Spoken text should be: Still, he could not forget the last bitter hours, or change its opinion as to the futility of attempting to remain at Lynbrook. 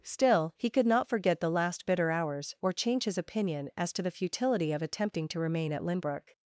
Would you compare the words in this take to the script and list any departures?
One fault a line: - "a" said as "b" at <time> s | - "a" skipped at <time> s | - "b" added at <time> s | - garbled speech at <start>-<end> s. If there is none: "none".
- "its" said as "his" at 3.0 s